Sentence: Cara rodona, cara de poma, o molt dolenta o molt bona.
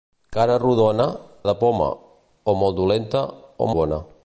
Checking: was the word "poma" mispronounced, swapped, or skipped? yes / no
no